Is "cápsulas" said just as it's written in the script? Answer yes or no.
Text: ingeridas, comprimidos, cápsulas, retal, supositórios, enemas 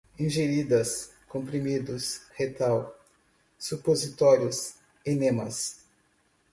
no